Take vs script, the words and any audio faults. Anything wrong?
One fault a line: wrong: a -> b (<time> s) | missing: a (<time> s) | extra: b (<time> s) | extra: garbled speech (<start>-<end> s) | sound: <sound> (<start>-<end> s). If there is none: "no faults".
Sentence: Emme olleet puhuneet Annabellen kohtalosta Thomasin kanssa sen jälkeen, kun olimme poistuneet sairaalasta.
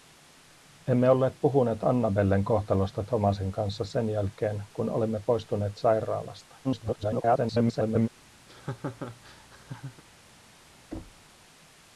extra: garbled speech (6.6-8.1 s)
sound: laugh (8.5-10.0 s)
sound: thud (10.9-11.3 s)